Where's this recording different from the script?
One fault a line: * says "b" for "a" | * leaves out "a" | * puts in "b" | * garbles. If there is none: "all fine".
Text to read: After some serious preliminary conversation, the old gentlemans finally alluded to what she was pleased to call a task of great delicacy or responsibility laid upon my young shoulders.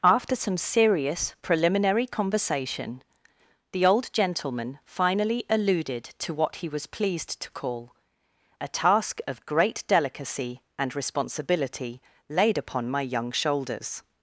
* says "gentleman" for "gentlemans"
* says "he" for "she"
* says "and" for "or"